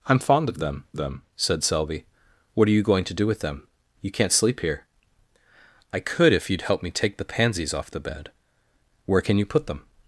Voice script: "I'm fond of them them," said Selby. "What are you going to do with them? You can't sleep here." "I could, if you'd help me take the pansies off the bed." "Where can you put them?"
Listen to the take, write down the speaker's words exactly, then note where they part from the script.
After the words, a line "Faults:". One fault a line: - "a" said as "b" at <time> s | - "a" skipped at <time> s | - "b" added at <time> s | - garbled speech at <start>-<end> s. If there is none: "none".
"I'm fond of them them," said Selby. "What are you going to do with them? You can't sleep here." "I could, if you'd help me take the pansies off the bed." "Where can you put them?"
Faults:
none